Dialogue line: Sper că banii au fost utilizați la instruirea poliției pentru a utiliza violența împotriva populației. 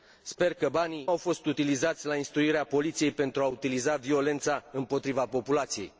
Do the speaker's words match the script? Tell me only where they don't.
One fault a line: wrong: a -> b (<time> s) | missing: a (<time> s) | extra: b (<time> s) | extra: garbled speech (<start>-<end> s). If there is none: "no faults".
no faults